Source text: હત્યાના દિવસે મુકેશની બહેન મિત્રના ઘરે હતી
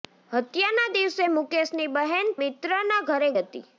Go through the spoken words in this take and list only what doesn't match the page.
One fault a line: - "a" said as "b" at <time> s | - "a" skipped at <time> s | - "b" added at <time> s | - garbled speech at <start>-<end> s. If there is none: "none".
none